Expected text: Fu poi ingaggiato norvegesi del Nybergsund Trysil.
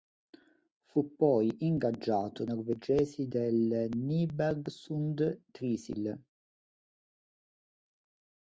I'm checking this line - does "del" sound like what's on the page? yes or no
yes